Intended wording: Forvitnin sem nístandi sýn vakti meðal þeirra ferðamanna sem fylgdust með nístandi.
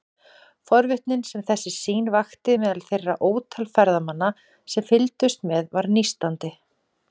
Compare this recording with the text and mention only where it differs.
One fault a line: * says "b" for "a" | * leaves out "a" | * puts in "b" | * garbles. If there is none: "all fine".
* says "þessi" for "nístandi"
* puts in "ótal"
* puts in "var"